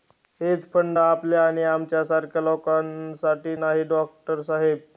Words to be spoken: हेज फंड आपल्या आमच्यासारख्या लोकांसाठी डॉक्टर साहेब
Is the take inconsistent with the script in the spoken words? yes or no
yes